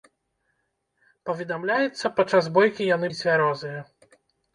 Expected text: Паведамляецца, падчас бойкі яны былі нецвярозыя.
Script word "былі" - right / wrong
wrong